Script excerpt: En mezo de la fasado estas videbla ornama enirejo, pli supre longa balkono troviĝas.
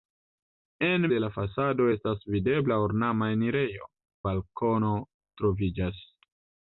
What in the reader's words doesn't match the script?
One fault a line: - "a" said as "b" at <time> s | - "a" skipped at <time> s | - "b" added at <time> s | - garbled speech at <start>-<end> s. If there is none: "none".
- "mezo" skipped at 1.0 s
- "pli supre longa" skipped at 3.9 s